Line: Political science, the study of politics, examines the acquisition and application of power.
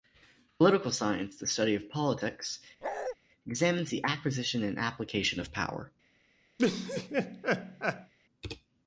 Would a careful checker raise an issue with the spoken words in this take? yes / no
no